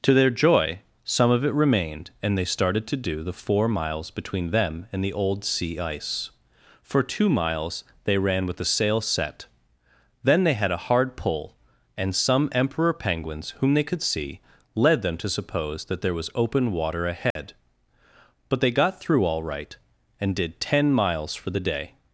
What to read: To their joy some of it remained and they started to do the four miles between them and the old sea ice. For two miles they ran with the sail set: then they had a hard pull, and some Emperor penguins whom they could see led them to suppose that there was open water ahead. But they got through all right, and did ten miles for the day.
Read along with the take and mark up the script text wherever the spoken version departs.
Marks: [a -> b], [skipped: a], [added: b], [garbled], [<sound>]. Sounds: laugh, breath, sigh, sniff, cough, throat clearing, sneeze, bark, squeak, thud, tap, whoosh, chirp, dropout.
To their joy some of it remained and they started to do the four miles between them and the old sea ice. For two miles they ran with the sail set: then they had a hard pull, and some Emperor penguins whom they could see led them to suppose that there was open water ahead. [dropout] But they got through all right, and did ten miles for the day.